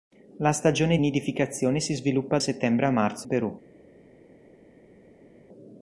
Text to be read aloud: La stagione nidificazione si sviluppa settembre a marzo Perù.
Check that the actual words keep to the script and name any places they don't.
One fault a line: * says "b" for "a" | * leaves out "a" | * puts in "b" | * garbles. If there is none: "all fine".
all fine